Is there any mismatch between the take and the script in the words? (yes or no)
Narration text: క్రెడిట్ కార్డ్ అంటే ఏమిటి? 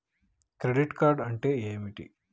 no